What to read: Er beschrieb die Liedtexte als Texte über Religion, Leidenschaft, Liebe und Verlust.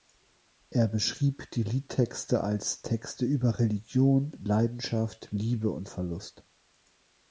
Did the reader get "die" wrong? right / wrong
right